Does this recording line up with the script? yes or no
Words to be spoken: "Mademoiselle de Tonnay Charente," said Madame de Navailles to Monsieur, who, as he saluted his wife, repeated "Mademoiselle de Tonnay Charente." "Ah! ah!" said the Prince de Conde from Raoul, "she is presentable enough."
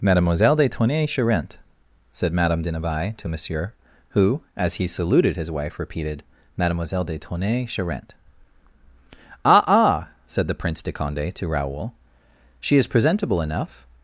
no